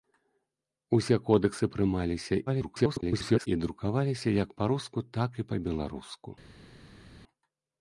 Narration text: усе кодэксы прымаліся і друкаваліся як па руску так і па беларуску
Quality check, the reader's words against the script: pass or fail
fail